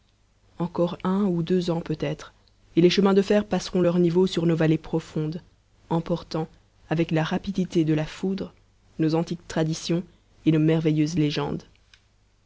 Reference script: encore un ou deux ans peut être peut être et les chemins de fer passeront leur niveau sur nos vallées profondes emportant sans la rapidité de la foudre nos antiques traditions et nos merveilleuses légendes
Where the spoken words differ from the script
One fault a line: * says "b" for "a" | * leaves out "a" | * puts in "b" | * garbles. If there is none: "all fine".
* leaves out "peut être"
* says "avec" for "sans"